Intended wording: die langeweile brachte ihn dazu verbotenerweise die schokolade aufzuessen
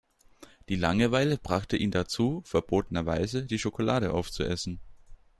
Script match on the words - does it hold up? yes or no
yes